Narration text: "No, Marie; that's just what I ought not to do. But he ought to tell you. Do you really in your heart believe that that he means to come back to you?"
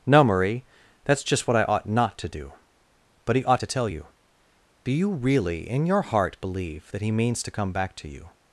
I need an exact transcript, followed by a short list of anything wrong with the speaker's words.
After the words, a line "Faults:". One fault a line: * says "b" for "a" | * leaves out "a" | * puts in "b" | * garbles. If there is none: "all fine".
"No, Marie; that's just what I ought not to do. But he ought to tell you. Do you really in your heart believe that he means to come back to you?"
Faults:
* leaves out "that"